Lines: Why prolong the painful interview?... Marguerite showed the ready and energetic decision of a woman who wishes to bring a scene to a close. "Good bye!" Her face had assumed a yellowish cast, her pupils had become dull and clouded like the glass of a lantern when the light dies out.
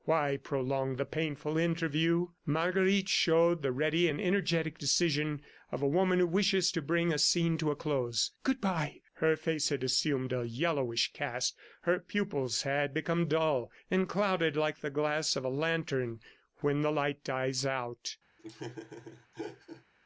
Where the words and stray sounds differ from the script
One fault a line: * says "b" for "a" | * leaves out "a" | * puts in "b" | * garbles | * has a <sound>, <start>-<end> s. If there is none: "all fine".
* has a laugh, 18.4-19.8 s